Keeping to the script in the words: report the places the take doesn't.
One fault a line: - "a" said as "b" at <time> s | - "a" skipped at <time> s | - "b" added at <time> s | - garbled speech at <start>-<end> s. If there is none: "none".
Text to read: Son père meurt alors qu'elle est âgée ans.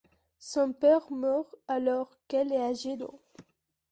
none